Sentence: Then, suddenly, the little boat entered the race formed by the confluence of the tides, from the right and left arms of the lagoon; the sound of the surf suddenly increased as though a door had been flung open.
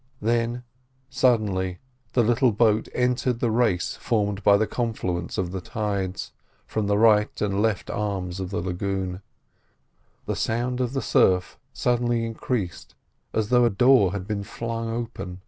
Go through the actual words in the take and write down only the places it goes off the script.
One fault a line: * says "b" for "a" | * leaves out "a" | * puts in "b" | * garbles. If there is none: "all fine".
all fine